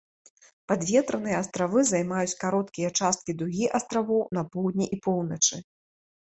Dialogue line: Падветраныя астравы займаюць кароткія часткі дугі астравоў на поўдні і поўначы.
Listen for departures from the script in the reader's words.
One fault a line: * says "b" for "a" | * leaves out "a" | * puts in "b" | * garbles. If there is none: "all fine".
all fine